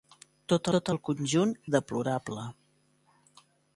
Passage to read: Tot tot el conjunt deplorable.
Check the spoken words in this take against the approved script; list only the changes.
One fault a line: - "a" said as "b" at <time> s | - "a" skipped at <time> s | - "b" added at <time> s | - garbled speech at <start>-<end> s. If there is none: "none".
none